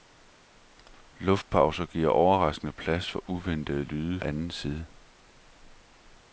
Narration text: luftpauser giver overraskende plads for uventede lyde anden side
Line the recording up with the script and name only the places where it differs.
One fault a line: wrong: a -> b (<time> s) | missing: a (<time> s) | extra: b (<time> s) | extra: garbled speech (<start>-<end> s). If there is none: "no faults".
no faults